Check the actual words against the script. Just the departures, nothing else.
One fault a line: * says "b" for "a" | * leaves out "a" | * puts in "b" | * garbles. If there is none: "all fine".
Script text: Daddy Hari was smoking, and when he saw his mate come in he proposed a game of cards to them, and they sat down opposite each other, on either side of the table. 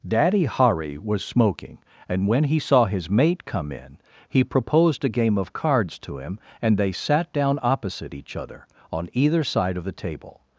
* says "him" for "them"